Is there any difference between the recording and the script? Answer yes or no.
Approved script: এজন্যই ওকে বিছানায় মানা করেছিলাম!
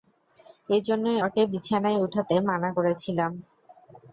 yes